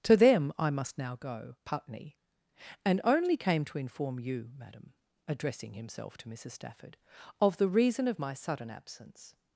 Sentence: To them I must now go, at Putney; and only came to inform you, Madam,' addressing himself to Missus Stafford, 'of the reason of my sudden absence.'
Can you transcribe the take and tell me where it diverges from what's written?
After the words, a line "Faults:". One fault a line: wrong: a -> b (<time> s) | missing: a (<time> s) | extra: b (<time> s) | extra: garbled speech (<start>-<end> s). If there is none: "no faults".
To them I must now go, Putney; and only came to inform you, Madam,' addressing himself to Missus Stafford, 'of the reason of my sudden absence.'
Faults:
missing: at (1.6 s)